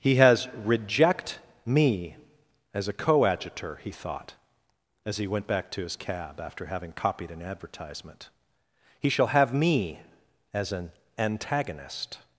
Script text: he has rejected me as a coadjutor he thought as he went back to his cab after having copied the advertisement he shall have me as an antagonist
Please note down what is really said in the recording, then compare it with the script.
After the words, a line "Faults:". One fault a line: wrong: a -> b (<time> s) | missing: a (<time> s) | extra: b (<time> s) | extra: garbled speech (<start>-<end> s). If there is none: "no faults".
he has reject me as a coadjutor he thought as he went back to his cab after having copied an advertisement he shall have me as an antagonist
Faults:
wrong: rejected -> reject (0.6 s)
wrong: the -> an (7.3 s)